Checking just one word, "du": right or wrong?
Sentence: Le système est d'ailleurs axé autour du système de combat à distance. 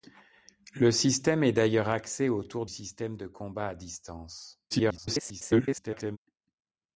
wrong